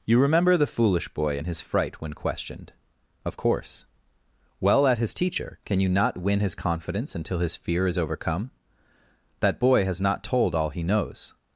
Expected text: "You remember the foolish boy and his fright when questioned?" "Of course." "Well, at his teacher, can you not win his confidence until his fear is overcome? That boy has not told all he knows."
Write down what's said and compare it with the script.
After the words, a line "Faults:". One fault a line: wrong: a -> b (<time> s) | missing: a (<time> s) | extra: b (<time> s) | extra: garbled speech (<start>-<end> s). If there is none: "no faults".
"You remember the foolish boy and his fright when questioned?" "Of course." "Well, at his teacher, can you not win his confidence until his fear is overcome? That boy has not told all he knows."
Faults:
no faults